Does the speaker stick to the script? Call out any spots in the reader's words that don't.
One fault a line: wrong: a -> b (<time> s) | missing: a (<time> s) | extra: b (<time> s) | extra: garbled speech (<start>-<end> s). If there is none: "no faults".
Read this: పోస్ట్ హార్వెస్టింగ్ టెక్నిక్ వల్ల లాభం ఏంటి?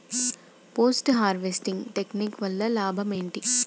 no faults